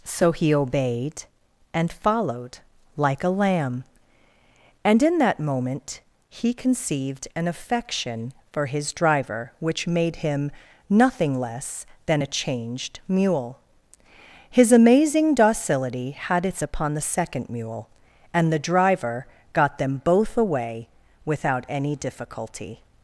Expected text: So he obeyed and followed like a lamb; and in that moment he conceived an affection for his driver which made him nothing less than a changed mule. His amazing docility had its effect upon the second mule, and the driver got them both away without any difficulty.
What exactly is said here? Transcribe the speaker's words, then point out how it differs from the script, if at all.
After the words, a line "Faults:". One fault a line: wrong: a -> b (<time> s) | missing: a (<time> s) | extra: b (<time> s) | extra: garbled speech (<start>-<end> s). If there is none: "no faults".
So he obeyed and followed like a lamb; and in that moment he conceived an affection for his driver which made him nothing less than a changed mule. His amazing docility had its upon the second mule, and the driver got them both away without any difficulty.
Faults:
missing: effect (16.6 s)